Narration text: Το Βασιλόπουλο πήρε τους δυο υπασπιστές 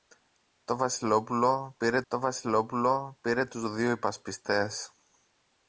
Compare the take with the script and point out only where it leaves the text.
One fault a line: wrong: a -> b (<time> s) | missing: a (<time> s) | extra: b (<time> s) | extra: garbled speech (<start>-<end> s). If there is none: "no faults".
extra: το Βασιλόπουλο πήρε (2.1 s)